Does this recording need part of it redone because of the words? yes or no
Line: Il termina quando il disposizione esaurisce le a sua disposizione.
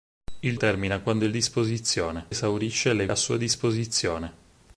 no